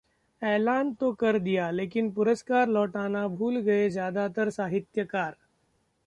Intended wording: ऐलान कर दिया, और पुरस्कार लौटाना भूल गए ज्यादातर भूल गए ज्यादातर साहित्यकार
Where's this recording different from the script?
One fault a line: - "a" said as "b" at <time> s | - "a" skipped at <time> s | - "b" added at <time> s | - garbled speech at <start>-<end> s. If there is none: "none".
- "तो" added at 0.9 s
- "और" said as "लेकिन" at 1.7 s
- "भूल गए ज्यादातर" skipped at 4.5 s